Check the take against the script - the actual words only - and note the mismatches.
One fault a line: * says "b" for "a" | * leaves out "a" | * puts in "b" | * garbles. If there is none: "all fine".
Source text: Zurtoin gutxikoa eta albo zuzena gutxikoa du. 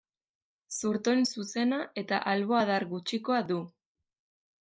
* says "zuzena" for "gutxikoa"
* says "adar" for "zuzena"